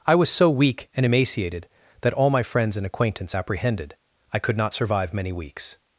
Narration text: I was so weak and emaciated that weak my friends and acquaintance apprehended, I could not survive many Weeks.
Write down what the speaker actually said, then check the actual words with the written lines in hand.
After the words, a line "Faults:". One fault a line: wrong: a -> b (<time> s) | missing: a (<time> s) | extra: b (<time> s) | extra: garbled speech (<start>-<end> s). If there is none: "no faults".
I was so weak and emaciated that all my friends and acquaintance apprehended, I could not survive many Weeks.
Faults:
wrong: weak -> all (2.1 s)